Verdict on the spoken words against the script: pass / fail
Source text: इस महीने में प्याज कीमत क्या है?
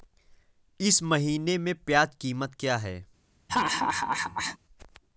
pass